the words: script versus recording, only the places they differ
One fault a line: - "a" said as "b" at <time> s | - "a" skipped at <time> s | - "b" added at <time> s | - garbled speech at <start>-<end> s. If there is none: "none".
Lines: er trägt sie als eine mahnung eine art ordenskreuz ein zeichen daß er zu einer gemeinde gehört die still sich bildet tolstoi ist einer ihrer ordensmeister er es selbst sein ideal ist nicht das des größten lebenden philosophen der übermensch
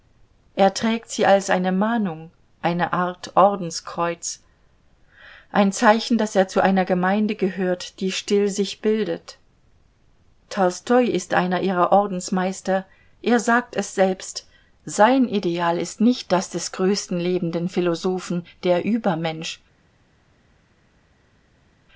- "sagt" added at 13.4 s